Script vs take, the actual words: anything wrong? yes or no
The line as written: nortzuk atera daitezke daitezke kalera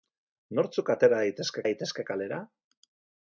no